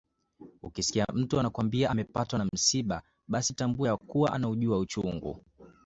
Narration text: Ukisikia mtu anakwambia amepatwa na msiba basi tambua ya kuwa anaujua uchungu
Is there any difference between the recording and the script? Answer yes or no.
no